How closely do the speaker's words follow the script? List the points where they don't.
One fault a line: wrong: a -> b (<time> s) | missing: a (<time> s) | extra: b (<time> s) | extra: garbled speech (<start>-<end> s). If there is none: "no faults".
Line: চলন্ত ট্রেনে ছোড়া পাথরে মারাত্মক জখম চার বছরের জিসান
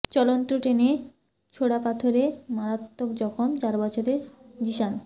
no faults